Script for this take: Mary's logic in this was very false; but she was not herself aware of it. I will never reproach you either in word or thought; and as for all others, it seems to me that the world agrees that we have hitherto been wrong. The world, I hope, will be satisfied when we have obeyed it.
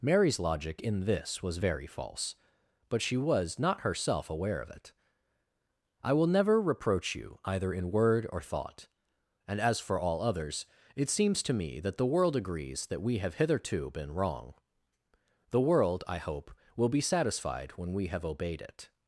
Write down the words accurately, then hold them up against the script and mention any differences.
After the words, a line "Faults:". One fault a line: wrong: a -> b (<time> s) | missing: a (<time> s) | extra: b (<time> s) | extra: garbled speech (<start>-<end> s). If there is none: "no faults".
Mary's logic in this was very false; but she was not herself aware of it. I will never reproach you either in word or thought; and as for all others, it seems to me that the world agrees that we have hitherto been wrong. The world, I hope, will be satisfied when we have obeyed it.
Faults:
no faults